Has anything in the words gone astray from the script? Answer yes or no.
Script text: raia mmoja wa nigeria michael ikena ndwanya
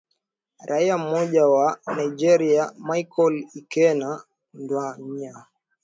no